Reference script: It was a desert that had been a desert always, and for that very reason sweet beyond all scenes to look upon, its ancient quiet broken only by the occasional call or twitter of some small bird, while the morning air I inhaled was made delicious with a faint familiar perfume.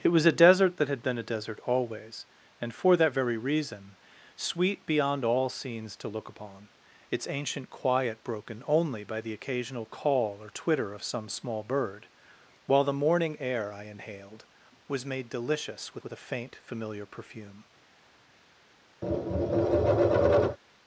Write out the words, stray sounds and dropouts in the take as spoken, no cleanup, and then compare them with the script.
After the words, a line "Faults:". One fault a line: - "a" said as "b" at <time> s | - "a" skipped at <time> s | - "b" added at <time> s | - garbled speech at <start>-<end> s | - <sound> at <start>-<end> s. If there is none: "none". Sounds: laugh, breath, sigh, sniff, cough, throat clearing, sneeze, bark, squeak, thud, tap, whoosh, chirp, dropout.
It was a desert that had been a desert always, and for that very reason sweet beyond all scenes to look upon, its ancient quiet broken only by the occasional call or twitter of some small bird, while the morning air I inhaled was made delicious with with a faint familiar perfume.
Faults:
- "with" added at 16.0 s
- tap at 19.0-20.6 s